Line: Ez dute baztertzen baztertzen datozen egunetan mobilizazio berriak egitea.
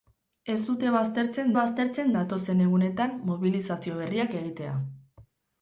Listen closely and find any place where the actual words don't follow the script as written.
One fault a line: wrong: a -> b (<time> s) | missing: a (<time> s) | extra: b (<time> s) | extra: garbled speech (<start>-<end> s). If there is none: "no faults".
no faults